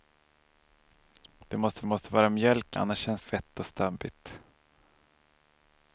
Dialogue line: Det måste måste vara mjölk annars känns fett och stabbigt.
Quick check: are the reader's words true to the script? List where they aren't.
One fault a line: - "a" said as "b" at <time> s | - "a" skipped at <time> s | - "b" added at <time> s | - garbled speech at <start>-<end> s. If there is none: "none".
none